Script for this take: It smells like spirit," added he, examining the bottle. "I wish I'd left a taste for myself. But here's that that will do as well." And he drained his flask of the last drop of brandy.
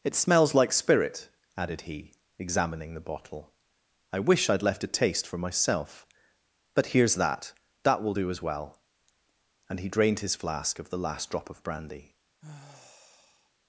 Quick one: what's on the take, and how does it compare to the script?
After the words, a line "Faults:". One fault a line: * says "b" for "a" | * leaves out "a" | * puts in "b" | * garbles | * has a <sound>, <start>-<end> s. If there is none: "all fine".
It smells like spirit," added he, examining the bottle. "I wish I'd left a taste for myself. But here's that that will do as well." And he drained his flask of the last drop of brandy.
Faults:
* has a sigh, 12.4-13.5 s